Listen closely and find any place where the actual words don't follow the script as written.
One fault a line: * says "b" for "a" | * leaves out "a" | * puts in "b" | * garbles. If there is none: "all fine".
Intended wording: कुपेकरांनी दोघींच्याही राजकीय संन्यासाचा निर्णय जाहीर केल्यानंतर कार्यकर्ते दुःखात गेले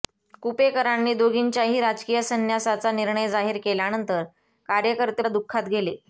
all fine